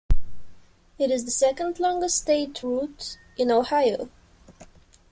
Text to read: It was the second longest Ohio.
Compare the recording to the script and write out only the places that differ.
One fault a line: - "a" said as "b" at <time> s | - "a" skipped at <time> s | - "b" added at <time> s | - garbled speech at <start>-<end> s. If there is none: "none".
- "was" said as "is" at 1.1 s
- "state route in" added at 2.2 s